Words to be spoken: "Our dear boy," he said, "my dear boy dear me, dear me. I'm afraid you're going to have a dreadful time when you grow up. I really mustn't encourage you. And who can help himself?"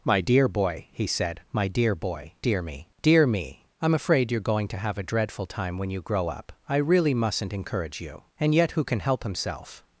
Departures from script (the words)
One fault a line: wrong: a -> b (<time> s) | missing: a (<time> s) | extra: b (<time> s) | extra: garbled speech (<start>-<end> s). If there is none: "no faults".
wrong: Our -> My (0.0 s)
extra: yet (8.5 s)